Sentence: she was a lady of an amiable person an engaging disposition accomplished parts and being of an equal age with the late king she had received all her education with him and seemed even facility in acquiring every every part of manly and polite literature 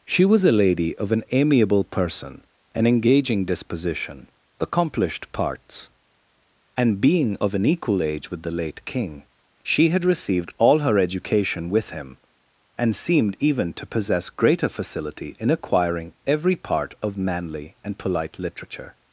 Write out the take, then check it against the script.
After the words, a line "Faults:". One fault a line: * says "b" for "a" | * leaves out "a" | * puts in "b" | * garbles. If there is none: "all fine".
she was a lady of an amiable person an engaging disposition accomplished parts and being of an equal age with the late king she had received all her education with him and seemed even to possess greater facility in acquiring every part of manly and polite literature
Faults:
* puts in "to possess greater"
* leaves out "every"